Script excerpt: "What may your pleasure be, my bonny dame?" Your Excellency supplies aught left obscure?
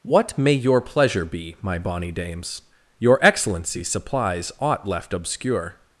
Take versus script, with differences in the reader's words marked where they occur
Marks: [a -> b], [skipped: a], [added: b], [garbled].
"What may your pleasure be, my bonny [dame?" -> dames] Your Excellency supplies aught left obscure?